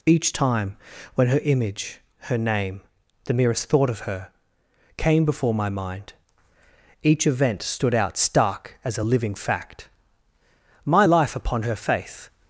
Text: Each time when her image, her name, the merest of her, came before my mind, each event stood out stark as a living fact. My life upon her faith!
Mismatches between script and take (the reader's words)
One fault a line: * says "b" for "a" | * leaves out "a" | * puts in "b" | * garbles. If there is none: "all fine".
* puts in "thought"